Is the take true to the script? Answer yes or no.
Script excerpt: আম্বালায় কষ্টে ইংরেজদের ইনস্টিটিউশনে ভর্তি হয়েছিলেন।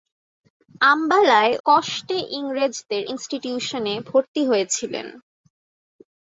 yes